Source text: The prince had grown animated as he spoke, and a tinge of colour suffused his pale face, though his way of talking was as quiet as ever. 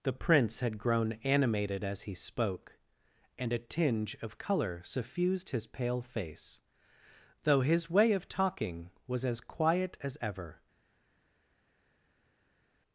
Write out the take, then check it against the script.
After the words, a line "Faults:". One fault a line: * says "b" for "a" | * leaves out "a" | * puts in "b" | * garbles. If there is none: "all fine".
The prince had grown animated as he spoke, and a tinge of colour suffused his pale face, though his way of talking was as quiet as ever.
Faults:
all fine